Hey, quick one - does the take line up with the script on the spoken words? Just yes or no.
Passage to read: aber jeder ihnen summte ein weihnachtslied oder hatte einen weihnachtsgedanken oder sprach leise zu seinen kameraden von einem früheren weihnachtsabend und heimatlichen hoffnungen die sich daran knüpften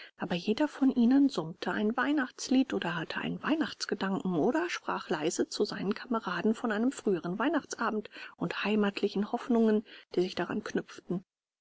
no